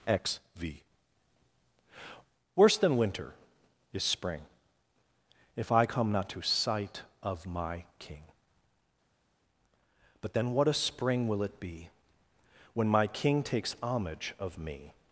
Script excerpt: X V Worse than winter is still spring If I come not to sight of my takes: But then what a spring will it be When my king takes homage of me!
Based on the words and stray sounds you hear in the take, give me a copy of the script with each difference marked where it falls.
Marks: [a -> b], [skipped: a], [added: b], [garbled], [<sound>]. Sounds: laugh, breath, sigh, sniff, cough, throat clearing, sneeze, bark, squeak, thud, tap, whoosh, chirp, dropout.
X V Worse than winter is [skipped: still] spring If I come not to sight of my [takes: -> king] But then what a spring will it be When my king takes homage of me!